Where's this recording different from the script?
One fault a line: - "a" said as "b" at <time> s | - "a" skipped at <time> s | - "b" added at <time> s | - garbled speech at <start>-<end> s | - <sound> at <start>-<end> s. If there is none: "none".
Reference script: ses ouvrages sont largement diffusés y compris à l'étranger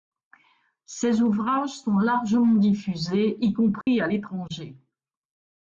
- dropout at 3.8-3.9 s